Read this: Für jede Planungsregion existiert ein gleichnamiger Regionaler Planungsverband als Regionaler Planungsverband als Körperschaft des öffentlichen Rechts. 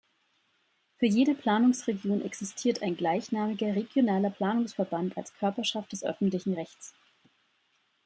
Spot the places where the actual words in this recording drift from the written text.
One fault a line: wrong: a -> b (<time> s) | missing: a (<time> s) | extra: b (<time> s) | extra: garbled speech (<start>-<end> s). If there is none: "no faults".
missing: Regionaler Planungsverband als (5.3 s)